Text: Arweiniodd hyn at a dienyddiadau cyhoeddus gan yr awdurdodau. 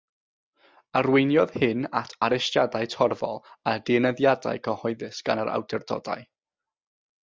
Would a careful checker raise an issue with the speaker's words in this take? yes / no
yes